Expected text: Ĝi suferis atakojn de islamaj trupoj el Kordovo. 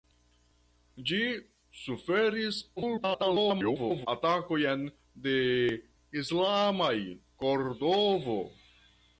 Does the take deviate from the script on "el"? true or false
true